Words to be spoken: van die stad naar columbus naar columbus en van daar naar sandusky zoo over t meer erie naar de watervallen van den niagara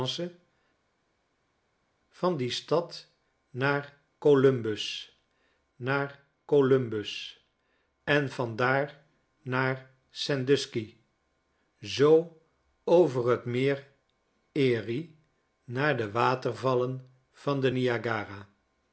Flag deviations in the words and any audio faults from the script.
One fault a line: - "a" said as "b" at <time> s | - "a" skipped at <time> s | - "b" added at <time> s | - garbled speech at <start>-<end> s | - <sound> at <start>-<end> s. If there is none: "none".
none